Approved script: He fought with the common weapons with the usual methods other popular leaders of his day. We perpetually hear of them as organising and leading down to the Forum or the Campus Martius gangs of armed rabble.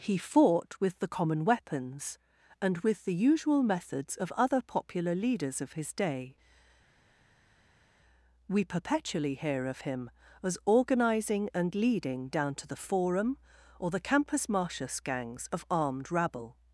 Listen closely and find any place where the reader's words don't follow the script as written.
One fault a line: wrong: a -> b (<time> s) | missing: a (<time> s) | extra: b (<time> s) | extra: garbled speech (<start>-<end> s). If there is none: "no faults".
extra: and (2.6 s)
extra: of (4.2 s)
wrong: them -> him (9.8 s)